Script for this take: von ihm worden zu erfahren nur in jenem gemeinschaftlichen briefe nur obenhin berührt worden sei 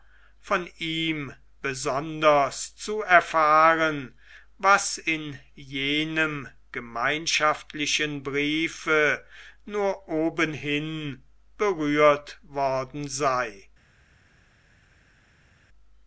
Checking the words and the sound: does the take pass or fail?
fail